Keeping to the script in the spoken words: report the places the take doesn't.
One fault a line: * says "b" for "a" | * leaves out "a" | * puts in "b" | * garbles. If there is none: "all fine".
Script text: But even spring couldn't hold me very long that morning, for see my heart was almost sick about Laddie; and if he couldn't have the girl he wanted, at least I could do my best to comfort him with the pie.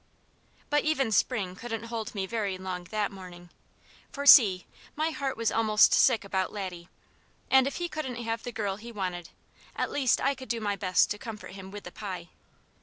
all fine